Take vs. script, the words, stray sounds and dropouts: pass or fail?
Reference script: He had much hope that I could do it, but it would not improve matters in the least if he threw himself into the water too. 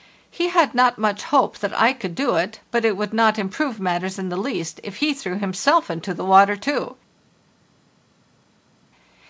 fail